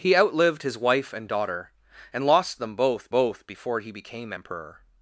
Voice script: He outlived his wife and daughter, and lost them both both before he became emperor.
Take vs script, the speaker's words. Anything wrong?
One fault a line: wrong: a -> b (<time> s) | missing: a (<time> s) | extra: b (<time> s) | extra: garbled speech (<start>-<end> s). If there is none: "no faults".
no faults